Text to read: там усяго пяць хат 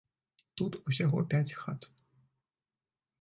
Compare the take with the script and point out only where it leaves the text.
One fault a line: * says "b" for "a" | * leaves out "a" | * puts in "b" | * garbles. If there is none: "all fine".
* says "тут" for "там"